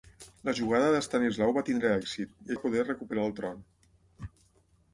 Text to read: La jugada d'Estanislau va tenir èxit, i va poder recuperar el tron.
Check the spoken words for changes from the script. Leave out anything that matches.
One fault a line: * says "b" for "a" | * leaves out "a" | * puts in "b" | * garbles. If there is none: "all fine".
all fine